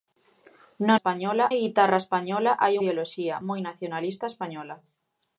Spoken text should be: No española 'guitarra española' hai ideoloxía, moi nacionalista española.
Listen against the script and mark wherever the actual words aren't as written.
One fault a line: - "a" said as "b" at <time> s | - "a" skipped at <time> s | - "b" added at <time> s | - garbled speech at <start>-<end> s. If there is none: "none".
none